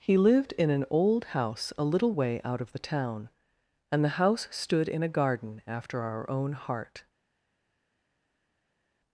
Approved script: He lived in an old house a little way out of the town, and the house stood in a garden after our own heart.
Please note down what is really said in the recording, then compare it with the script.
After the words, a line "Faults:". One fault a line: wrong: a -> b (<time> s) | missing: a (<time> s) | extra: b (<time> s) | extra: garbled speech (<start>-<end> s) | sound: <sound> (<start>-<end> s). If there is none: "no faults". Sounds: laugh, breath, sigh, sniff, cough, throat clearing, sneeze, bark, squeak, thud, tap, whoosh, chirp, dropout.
He lived in an old house a little way out of the town, and the house stood in a garden after our own heart.
Faults:
no faults